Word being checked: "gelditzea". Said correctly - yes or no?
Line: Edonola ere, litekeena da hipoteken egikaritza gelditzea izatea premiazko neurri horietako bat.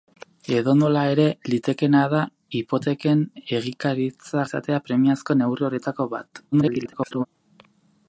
no